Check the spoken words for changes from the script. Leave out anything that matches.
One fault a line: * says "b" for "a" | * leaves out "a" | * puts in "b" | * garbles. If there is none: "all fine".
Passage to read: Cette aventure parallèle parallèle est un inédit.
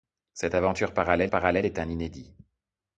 all fine